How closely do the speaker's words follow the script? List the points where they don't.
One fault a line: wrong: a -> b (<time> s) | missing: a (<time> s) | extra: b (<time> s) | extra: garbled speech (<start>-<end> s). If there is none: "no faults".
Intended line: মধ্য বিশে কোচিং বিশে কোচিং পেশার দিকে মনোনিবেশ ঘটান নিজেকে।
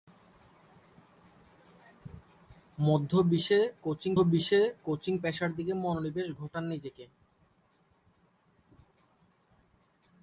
no faults